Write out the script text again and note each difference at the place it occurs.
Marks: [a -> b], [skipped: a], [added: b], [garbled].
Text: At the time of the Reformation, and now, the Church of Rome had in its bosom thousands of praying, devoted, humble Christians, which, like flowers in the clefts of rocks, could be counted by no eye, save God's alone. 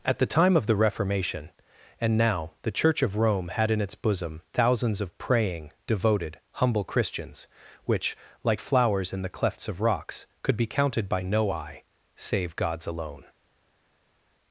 At the time of the Reformation, and now, the Church of Rome had in its bosom thousands of praying, devoted, humble Christians, which, like flowers in the clefts of rocks, could be counted by no eye, save God's alone.